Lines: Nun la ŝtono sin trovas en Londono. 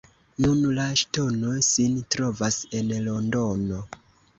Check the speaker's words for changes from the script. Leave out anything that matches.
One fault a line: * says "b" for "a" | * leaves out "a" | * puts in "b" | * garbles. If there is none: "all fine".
all fine